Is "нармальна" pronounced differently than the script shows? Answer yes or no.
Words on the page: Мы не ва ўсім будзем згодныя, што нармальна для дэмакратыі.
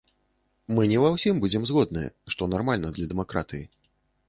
no